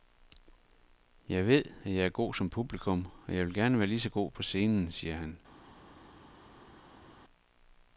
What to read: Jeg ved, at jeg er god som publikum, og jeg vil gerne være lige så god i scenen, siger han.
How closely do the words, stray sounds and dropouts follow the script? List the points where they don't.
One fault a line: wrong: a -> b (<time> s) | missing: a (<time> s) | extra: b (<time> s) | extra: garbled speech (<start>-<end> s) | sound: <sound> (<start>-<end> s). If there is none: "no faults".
wrong: i -> på (4.3 s)